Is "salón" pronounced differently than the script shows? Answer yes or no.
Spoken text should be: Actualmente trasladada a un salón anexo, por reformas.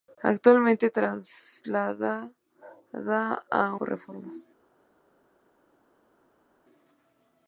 yes